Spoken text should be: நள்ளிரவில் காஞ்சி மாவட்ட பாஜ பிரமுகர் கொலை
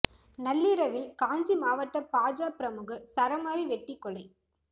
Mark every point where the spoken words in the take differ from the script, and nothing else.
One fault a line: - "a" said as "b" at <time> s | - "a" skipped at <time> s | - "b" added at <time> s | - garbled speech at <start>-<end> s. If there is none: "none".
- "சரமாரி வெட்டி" added at 3.1 s